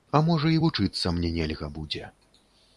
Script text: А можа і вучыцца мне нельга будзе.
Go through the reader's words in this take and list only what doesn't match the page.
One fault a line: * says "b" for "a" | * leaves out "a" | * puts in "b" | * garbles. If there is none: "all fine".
all fine